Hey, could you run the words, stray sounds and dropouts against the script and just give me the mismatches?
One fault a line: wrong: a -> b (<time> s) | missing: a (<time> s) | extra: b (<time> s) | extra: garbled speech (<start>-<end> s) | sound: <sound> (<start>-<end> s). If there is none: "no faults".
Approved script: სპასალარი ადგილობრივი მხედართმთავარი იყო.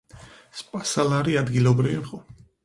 missing: მხედართმთავარი (2.0 s)